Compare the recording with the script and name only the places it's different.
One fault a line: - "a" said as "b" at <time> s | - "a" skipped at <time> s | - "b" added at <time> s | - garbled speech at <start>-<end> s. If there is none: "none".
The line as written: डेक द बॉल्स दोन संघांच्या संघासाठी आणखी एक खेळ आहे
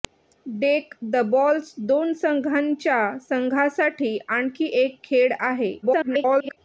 - garbled speech at 5.8-6.6 s